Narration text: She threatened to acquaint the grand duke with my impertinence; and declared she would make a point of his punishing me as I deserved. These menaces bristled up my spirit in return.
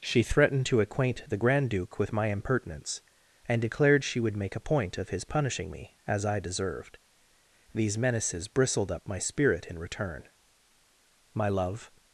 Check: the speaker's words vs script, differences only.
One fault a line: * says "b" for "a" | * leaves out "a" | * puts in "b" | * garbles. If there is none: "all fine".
* puts in "My love"